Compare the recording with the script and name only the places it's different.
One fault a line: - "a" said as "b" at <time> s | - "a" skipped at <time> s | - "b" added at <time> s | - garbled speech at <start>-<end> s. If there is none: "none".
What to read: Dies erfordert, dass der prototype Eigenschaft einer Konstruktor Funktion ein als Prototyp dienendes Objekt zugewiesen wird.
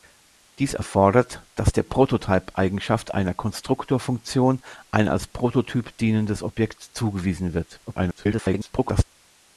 - garbled speech at 7.9-9.0 s